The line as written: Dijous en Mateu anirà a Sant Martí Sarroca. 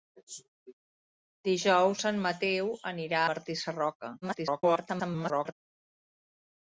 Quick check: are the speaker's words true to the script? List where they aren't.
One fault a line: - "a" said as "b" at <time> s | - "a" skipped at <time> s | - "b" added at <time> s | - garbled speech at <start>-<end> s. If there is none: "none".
- "a Sant" skipped at 3.2 s
- garbled speech at 4.2-5.5 s